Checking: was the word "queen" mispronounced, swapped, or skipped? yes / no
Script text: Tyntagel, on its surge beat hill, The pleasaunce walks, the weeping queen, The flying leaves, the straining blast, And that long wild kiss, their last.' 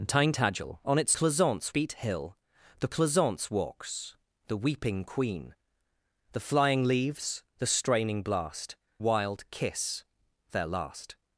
no